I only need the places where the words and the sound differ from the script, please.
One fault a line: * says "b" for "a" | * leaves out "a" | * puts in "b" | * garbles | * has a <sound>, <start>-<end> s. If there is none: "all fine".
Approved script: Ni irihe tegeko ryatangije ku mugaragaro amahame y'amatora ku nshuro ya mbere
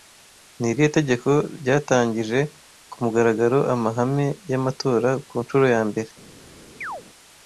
* has a chirp, 6.8-7.0 s